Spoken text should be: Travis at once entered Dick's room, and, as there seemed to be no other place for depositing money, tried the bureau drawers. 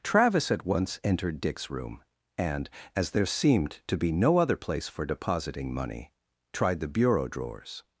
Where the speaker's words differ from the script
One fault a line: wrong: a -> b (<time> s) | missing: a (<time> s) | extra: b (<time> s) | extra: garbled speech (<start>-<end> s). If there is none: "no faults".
no faults